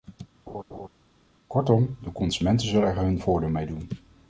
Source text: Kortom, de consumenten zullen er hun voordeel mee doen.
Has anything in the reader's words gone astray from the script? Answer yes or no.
no